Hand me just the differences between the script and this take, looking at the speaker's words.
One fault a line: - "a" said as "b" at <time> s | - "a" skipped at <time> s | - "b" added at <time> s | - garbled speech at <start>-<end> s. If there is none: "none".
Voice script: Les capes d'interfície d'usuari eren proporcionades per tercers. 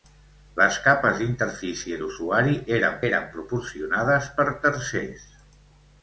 - "eren" added at 3.1 s